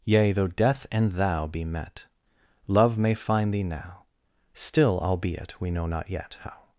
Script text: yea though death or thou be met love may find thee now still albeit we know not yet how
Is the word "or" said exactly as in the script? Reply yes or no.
no